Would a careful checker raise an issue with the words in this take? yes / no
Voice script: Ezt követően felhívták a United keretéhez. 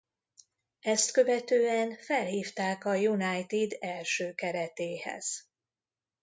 yes